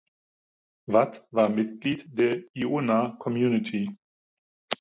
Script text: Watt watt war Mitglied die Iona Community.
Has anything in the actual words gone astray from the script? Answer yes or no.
yes